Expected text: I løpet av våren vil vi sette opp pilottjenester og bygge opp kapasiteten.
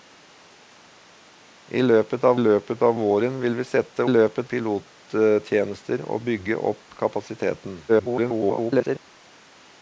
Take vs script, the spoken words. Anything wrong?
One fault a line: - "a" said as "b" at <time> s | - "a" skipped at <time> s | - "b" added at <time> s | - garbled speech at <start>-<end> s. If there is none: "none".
- "løpet av" added at 2.4 s
- "opp" said as "løpet" at 4.1 s
- garbled speech at 7.9-9.0 s